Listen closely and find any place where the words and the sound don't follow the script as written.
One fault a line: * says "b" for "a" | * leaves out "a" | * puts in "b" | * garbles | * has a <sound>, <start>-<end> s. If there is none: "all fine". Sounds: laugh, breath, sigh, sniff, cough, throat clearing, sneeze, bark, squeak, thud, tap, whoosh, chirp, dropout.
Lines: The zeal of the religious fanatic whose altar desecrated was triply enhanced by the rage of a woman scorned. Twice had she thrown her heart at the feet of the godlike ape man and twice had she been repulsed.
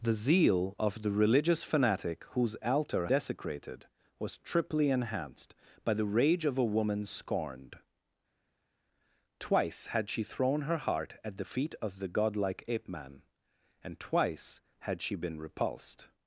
all fine